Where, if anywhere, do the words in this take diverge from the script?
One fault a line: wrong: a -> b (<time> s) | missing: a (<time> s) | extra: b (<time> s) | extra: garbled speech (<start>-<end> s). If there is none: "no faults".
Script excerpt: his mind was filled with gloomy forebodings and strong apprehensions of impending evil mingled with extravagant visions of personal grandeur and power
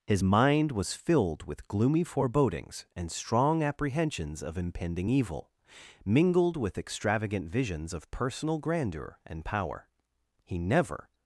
extra: he never (10.4 s)